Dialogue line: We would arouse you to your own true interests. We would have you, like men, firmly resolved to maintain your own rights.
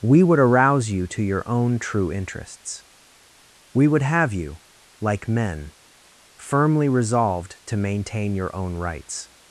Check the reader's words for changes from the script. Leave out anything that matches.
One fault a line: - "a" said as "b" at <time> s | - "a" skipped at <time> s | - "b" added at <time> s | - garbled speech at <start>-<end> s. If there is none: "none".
none